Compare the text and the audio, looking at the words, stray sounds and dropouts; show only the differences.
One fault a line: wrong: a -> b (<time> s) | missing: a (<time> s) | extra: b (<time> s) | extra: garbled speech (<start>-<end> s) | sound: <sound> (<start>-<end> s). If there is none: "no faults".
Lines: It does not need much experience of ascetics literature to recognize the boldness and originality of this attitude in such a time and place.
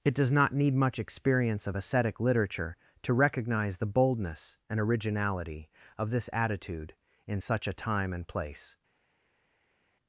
wrong: ascetics -> ascetic (1.7 s)